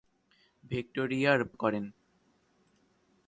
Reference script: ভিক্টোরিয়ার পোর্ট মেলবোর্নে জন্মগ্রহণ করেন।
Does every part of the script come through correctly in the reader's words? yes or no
no